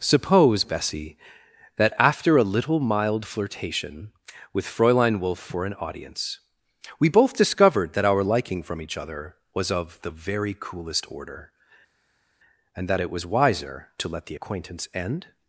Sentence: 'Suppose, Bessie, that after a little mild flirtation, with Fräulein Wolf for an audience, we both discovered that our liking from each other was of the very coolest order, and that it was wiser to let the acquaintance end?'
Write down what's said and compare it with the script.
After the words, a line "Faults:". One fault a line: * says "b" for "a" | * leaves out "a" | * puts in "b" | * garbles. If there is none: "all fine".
'Suppose, Bessie, that after a little mild flirtation, with Fräulein Wolf for an audience, we both discovered that our liking from each other was of the very coolest order, and that it was wiser to let the acquaintance end?'
Faults:
all fine